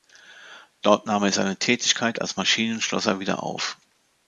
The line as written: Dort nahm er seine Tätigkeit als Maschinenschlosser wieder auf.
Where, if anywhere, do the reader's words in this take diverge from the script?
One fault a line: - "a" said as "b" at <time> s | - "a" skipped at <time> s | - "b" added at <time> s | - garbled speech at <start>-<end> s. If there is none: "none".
none